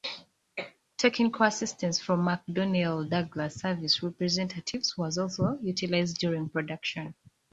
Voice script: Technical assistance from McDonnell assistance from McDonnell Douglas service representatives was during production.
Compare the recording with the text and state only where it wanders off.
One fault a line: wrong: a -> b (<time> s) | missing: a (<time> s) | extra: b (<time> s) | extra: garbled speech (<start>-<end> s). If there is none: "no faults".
missing: assistance from McDonnell (3.1 s)
extra: also utilized (5.2 s)